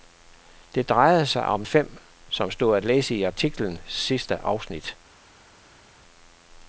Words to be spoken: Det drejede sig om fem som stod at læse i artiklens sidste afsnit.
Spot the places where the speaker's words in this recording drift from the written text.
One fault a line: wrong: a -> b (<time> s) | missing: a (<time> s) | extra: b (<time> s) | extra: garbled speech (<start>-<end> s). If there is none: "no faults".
no faults